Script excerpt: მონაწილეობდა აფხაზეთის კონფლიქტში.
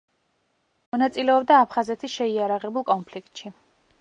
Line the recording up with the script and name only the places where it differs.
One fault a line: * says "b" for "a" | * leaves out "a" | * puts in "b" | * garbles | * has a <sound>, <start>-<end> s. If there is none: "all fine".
* puts in "შეიარაღებულ"